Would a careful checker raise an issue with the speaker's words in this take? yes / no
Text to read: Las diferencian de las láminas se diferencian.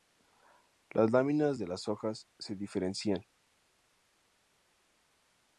yes